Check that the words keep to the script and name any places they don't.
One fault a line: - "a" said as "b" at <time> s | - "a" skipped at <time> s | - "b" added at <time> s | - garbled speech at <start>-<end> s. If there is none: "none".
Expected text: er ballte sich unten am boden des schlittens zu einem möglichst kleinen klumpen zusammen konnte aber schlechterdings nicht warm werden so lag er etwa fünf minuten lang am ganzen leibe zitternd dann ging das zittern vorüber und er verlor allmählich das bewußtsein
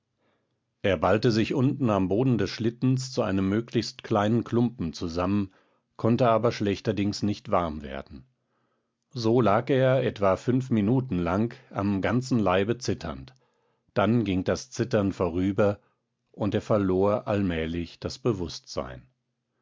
none